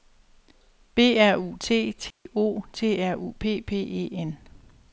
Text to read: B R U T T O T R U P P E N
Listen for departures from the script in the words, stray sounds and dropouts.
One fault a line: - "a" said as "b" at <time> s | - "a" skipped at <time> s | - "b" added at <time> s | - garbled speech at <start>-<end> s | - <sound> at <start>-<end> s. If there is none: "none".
- dropout at 2.1-2.3 s